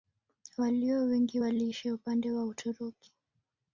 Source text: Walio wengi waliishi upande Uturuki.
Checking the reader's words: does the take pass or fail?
fail